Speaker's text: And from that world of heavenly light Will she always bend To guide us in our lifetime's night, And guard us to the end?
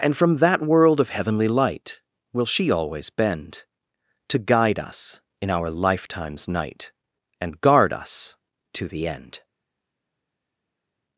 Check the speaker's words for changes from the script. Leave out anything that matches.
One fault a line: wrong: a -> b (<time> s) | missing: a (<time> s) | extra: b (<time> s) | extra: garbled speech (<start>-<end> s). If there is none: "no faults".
no faults